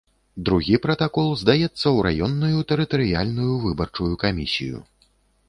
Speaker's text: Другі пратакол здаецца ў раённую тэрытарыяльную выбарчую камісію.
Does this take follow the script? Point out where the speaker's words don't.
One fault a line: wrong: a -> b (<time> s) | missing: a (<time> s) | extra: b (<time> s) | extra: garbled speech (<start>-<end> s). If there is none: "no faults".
no faults